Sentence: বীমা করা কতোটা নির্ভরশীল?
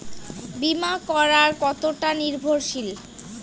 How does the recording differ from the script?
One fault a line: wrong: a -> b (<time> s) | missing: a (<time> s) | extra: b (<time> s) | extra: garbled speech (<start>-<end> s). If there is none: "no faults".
no faults